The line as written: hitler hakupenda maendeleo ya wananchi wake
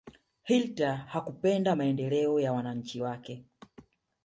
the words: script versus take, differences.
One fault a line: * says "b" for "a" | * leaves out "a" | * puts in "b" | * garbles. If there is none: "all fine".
all fine